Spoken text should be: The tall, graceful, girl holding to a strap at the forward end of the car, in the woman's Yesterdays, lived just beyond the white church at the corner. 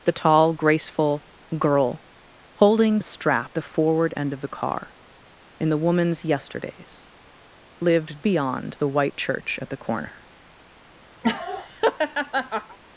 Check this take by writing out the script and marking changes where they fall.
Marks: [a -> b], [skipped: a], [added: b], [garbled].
The tall, graceful, girl holding [skipped: to] a strap [skipped: at] the forward end of the car, in the woman's Yesterdays, lived [skipped: just] beyond the white church at the corner.